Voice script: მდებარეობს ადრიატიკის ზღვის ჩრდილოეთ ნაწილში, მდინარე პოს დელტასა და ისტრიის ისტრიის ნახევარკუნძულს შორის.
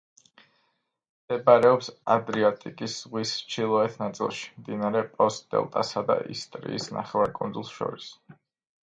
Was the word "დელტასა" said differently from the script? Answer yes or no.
no